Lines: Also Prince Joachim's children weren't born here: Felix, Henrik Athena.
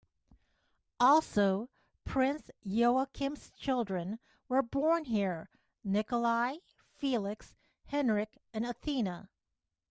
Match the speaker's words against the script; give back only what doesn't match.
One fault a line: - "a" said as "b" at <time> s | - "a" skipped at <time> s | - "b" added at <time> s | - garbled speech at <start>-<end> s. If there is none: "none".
- "weren't" said as "were" at 4.5 s
- "Nikolai" added at 5.8 s
- "and" added at 8.5 s